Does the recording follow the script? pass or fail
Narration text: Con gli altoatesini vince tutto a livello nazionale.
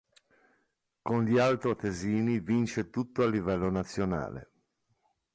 pass